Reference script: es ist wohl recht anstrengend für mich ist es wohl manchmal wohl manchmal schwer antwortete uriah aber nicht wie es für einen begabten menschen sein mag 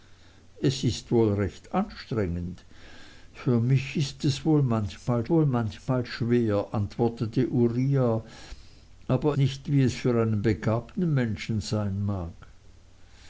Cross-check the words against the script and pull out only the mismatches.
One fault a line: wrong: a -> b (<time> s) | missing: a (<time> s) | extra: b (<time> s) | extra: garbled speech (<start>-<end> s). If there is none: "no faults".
no faults